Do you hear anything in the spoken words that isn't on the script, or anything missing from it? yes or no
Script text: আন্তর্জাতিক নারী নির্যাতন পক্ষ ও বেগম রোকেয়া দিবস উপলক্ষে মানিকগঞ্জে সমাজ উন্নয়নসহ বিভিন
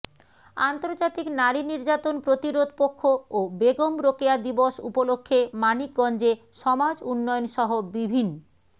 yes